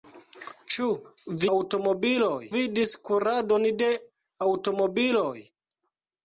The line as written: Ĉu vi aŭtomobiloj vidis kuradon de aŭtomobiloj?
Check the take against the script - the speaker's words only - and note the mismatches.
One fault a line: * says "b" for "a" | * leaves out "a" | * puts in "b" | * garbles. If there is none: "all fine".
all fine